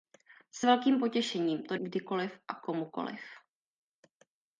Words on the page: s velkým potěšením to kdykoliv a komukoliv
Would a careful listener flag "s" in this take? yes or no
no